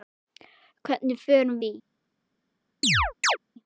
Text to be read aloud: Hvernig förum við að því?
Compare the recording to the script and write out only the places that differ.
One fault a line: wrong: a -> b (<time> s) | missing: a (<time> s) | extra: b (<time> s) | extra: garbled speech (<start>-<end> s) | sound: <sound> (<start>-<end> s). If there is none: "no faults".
missing: við að (1.6 s)
sound: chirp (2.8-3.4 s)